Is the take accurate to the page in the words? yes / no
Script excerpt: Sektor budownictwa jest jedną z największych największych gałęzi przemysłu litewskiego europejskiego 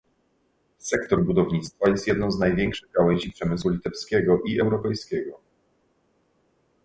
no